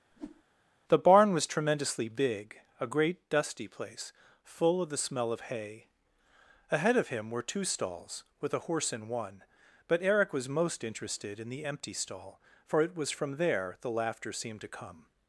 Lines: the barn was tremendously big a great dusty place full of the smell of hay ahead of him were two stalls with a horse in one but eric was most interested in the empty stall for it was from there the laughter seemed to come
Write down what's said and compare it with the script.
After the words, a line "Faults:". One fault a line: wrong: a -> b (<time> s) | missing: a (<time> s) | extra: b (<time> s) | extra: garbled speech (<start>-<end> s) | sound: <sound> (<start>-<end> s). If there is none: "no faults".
the barn was tremendously big a great dusty place full of the smell of hay ahead of him were two stalls with a horse in one but eric was most interested in the empty stall for it was from there the laughter seemed to come
Faults:
sound: whoosh (0.1-0.4 s)